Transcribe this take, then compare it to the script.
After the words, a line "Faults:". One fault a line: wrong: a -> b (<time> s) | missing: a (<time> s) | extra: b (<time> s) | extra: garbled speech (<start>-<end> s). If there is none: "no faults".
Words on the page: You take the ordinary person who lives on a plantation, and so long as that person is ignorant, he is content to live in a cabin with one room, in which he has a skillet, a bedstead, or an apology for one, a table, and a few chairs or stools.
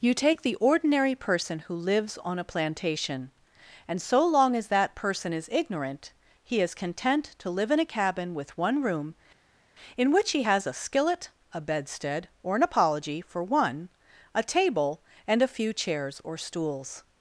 You take the ordinary person who lives on a plantation, and so long as that person is ignorant, he is content to live in a cabin with one room, in which he has a skillet, a bedstead, or an apology for one, a table, and a few chairs or stools.
Faults:
no faults